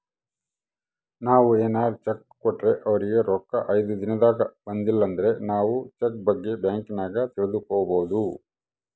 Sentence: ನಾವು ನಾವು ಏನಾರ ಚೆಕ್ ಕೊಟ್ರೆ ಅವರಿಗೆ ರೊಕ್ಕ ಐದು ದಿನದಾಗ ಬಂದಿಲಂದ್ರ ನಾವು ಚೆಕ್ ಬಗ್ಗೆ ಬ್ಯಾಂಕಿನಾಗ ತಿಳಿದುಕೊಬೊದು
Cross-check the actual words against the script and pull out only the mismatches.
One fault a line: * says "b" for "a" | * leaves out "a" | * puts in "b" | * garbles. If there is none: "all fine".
* leaves out "ನಾವು"